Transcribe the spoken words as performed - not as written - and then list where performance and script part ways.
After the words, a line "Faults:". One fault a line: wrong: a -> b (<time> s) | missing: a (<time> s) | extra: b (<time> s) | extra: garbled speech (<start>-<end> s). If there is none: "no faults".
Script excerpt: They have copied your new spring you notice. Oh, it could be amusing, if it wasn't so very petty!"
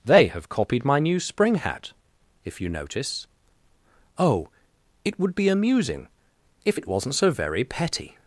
They have copied my new spring hat, if you notice. Oh, it would be amusing, if it wasn't so very petty!"
Faults:
wrong: your -> my (0.8 s)
extra: hat if (1.6 s)
wrong: could -> would (5.2 s)